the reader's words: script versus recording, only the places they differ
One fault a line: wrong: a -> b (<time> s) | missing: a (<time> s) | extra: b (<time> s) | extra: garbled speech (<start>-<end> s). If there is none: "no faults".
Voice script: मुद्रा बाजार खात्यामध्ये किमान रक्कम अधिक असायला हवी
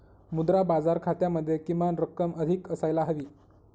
no faults